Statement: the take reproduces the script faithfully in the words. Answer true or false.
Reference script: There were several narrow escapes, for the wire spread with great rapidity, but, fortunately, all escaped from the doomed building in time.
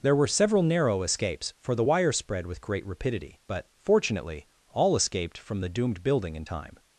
true